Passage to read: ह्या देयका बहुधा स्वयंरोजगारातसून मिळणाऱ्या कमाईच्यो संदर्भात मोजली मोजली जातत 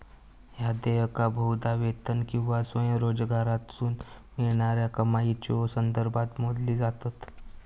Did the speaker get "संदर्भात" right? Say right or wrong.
right